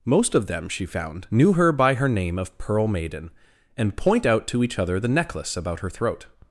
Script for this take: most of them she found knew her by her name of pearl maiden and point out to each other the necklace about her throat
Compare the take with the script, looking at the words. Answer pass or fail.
pass